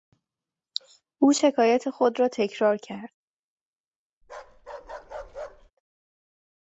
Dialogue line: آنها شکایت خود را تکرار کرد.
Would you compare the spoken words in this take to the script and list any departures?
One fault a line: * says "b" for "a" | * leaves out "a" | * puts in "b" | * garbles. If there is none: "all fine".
* says "او" for "آنها"